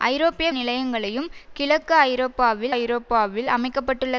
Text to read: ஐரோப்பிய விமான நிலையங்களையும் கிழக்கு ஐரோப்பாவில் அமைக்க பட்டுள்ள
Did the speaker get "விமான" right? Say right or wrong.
wrong